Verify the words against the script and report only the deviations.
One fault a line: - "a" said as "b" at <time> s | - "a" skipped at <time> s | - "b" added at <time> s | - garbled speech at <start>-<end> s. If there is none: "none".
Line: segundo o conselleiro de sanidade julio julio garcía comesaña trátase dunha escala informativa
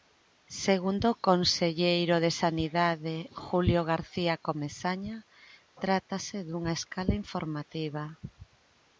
- "julio" skipped at 3.8 s